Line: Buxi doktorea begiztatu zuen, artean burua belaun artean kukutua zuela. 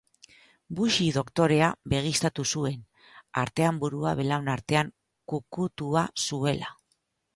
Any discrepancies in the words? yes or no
no